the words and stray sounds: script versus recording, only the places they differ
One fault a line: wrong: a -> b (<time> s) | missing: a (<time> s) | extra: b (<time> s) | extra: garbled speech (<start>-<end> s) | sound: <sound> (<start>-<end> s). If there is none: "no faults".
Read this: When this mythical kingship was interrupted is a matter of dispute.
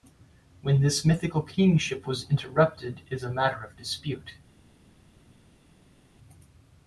no faults